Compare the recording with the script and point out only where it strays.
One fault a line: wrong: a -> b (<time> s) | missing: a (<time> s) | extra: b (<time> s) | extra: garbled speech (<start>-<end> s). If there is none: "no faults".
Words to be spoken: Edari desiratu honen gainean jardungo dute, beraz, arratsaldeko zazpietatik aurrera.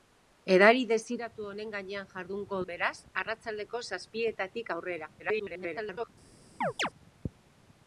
missing: dute (2.6 s)
extra: garbled speech (5.2-6.1 s)